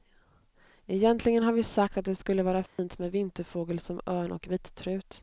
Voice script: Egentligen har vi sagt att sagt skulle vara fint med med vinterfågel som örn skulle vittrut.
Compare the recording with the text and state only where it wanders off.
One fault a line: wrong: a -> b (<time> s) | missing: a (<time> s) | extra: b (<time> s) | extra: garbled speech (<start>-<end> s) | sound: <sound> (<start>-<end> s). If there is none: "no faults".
wrong: sagt -> det (2.0 s)
sound: dropout (2.7-2.8 s)
missing: med (3.1 s)
wrong: skulle -> och (4.3 s)